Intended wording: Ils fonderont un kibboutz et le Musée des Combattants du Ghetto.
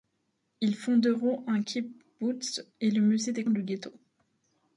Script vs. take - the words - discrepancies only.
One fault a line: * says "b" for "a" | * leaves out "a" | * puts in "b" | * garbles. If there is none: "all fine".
* leaves out "Combattants"